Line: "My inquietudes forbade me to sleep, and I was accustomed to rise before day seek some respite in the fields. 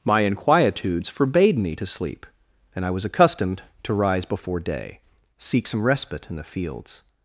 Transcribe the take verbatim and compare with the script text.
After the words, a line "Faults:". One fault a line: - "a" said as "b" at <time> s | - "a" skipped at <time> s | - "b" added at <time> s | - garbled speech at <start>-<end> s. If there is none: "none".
"My inquietudes forbade me to sleep, and I was accustomed to rise before day seek some respite in the fields.
Faults:
none